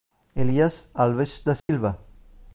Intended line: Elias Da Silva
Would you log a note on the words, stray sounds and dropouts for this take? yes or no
yes